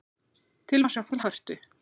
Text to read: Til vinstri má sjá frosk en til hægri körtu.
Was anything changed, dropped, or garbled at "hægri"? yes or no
yes